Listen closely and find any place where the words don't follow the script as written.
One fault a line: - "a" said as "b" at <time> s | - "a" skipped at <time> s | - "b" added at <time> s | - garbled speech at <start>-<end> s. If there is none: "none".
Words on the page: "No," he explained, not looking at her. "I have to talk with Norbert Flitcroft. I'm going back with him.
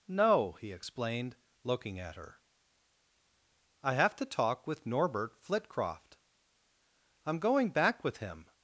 - "not" skipped at 1.4 s